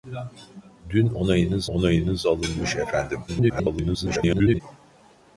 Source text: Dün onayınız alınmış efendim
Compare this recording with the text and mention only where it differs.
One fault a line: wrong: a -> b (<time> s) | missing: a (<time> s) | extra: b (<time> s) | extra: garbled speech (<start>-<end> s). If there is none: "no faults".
extra: onayınız (1.6 s)
extra: garbled speech (3.3-4.6 s)